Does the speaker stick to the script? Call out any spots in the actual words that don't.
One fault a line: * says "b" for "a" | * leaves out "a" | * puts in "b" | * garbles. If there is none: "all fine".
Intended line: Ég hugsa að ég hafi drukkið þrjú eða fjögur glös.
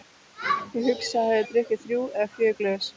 all fine